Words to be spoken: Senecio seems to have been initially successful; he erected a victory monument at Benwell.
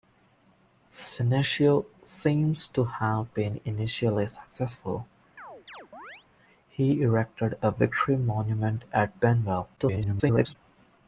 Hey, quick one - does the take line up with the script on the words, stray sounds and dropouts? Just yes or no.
no